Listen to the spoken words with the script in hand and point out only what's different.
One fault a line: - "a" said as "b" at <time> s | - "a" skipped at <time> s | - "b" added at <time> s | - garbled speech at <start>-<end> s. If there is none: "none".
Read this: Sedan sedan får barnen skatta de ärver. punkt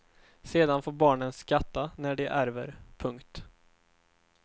- "sedan" skipped at 0.8 s
- "när" added at 2.0 s